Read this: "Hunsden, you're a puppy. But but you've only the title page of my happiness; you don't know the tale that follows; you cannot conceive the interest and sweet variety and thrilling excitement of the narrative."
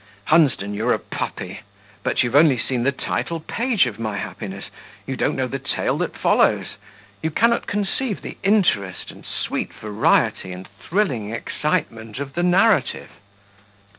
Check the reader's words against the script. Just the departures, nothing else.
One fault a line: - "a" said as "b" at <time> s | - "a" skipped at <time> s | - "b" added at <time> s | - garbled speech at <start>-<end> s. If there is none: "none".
- "but" skipped at 2.2 s
- "seen" added at 2.6 s